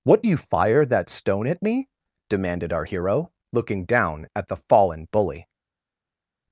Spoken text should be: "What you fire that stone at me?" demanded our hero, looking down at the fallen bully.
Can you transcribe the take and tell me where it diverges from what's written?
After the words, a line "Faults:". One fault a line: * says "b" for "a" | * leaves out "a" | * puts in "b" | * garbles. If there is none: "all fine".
"What you fire that stone at me?" demanded our hero, looking down at the fallen bully.
Faults:
all fine